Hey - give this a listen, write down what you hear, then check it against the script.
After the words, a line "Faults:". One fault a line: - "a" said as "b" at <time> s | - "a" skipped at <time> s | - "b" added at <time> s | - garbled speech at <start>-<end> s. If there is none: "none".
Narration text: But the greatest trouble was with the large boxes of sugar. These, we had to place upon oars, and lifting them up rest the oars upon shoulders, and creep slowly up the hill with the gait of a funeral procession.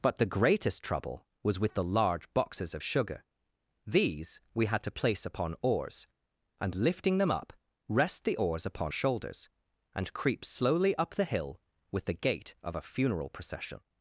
But the greatest trouble was with the large boxes of sugar. These, we had to place upon oars, and lifting them up rest the oars upon shoulders, and creep slowly up the hill with the gait of a funeral procession.
Faults:
none